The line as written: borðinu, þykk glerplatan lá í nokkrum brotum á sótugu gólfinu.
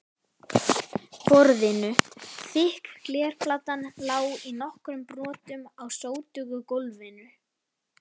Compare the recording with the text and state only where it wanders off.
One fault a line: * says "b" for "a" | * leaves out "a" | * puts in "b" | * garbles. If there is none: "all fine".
all fine